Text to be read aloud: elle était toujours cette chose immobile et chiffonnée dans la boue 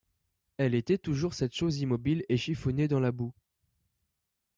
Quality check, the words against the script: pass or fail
pass